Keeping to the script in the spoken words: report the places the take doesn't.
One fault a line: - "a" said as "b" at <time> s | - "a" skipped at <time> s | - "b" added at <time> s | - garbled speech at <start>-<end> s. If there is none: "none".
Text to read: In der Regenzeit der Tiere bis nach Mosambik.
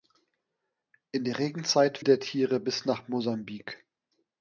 none